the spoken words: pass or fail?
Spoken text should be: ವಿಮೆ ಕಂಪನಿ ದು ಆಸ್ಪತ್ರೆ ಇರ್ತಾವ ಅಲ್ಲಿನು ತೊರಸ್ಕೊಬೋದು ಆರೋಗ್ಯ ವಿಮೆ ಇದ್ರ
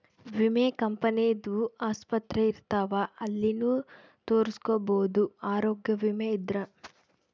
pass